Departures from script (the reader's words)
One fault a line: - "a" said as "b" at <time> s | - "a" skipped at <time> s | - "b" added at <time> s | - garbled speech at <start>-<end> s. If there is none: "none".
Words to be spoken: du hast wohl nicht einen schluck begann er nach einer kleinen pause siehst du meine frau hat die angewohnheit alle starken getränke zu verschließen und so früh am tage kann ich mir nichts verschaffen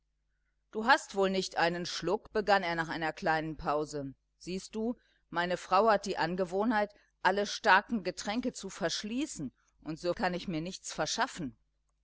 - "früh am tage" skipped at 10.2 s